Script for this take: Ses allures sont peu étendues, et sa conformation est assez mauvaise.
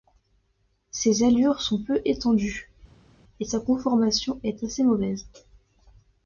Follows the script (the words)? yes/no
yes